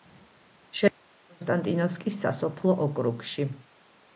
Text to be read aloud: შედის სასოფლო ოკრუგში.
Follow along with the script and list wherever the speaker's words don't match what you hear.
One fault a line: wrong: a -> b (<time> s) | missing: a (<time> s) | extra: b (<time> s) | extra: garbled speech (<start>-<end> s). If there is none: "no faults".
extra: კონსტანტინოვკის (1.3 s)